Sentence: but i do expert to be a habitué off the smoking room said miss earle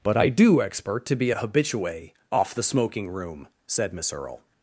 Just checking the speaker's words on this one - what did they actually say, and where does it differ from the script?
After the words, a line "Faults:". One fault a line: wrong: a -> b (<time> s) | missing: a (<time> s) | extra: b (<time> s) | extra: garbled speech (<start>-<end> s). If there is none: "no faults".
but i do expert to be a habitué off the smoking room said miss earle
Faults:
no faults